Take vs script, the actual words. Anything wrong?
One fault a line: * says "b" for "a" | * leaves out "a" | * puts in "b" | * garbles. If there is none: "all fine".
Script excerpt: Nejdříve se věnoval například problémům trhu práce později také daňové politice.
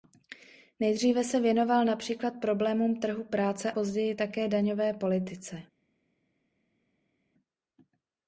all fine